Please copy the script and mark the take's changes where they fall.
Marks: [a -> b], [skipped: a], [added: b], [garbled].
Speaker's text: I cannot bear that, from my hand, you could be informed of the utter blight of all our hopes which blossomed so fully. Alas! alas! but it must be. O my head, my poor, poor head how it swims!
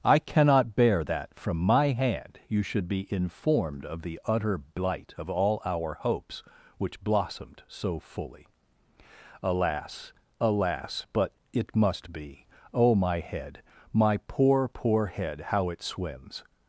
I cannot bear that, from my hand, you [could -> should] be informed of the utter blight of all our hopes which blossomed so fully. Alas! alas! but it must be. O my head, my poor, poor head how it swims!